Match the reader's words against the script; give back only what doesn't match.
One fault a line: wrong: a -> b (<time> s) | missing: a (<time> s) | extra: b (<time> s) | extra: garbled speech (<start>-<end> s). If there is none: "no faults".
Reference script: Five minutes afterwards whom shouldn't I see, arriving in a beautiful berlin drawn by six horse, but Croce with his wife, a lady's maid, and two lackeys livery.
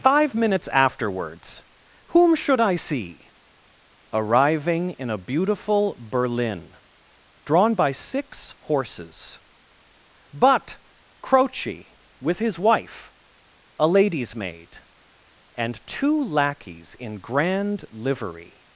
wrong: shouldn't -> should (2.3 s)
wrong: horse -> horses (8.6 s)
extra: in grand (17.0 s)